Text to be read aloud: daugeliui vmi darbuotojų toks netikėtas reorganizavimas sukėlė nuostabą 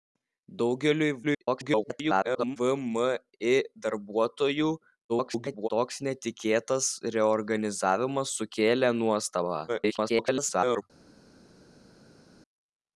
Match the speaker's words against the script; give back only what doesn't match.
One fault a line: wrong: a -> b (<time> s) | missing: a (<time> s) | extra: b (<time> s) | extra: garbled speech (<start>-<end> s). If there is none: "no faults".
extra: garbled speech (1.2-2.6 s)
extra: garbled speech (5.1-5.7 s)
extra: garbled speech (9.7-10.8 s)